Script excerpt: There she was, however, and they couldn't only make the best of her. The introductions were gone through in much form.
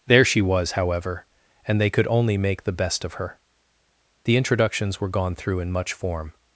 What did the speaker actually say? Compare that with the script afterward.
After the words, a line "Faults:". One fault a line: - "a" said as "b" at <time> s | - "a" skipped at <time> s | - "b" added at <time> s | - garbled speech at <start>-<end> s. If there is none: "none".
There she was, however, and they could only make the best of her. The introductions were gone through in much form.
Faults:
- "couldn't" said as "could" at 1.9 s